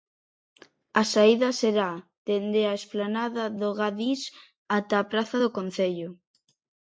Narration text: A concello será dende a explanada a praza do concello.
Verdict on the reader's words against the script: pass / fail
fail